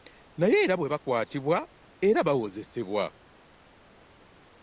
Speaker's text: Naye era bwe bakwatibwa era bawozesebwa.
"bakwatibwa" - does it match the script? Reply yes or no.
yes